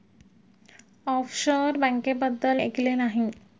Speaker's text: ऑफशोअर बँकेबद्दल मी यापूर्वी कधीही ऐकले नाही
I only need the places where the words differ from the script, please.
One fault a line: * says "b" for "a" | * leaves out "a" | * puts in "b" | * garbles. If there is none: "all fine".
* leaves out "मी यापूर्वी कधीही"